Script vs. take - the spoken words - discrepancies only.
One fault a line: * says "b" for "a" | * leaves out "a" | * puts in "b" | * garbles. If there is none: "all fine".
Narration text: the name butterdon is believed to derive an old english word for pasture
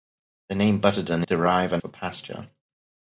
* leaves out "is believed to"
* leaves out "old english word"